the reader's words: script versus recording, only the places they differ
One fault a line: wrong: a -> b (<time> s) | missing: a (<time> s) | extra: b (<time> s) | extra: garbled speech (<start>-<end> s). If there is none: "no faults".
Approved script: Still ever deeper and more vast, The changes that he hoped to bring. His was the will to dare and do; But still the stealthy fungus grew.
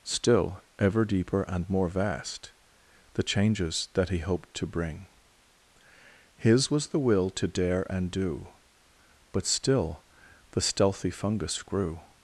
no faults